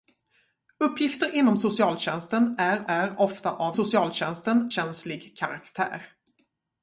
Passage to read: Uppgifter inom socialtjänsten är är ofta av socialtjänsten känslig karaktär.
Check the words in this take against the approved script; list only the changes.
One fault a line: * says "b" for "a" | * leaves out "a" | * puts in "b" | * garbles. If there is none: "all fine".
all fine